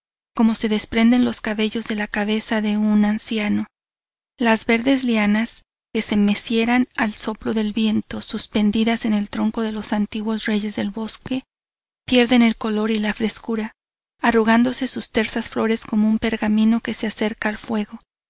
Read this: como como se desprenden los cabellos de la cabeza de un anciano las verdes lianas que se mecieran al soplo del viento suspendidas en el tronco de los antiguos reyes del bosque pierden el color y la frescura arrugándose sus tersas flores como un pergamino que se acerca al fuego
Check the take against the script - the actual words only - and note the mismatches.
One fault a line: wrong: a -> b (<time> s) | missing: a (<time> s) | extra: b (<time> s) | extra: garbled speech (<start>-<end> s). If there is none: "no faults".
missing: como (0.6 s)